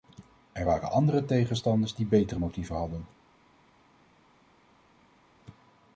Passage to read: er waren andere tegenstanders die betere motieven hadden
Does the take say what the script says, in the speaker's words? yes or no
yes